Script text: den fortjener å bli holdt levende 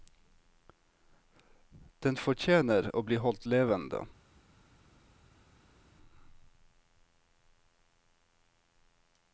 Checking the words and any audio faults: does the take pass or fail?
pass